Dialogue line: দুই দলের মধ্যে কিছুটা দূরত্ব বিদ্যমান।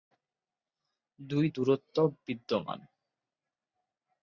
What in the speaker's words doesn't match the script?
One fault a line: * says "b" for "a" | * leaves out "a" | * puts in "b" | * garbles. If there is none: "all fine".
* leaves out "দলের মধ্যে কিছুটা"